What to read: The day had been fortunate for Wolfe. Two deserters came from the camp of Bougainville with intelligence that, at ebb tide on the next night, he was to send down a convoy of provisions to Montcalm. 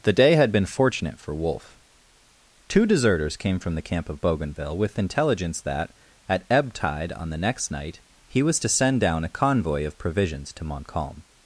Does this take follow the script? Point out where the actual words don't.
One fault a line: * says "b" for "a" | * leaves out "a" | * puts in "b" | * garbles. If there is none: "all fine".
all fine